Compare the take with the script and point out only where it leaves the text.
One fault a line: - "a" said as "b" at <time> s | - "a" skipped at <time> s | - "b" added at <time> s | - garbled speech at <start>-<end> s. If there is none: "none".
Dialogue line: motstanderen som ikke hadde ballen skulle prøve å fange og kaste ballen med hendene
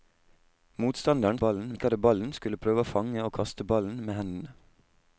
- "som" said as "ballen" at 1.4 s